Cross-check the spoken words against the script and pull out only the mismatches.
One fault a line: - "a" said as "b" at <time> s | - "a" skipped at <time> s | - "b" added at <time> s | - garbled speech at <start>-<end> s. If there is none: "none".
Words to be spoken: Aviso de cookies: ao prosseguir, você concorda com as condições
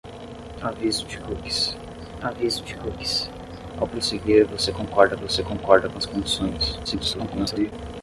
- "aviso de cookies" added at 2.2 s
- "você concorda" added at 5.2 s
- garbled speech at 6.8-7.7 s